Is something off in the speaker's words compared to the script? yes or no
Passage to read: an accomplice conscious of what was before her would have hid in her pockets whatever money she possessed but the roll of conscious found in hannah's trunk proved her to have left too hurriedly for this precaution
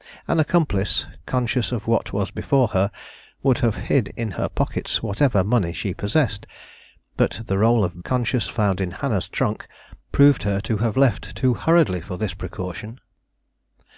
no